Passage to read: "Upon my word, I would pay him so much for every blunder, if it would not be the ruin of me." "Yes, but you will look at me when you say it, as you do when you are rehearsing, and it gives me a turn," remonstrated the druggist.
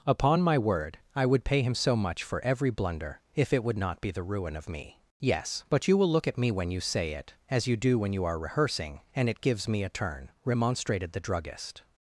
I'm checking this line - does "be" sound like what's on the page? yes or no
yes